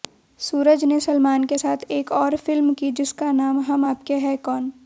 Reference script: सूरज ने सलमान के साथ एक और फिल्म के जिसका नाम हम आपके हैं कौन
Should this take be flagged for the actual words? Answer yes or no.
yes